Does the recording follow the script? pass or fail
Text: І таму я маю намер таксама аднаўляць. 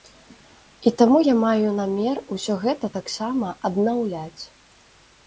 fail